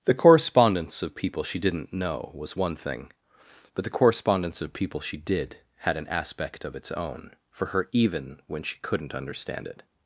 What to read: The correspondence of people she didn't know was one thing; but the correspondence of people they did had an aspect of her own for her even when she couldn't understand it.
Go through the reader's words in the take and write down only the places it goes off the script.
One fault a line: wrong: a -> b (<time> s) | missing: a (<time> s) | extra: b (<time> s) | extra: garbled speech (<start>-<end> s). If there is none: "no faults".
wrong: they -> she (5.0 s)
wrong: her -> its (6.8 s)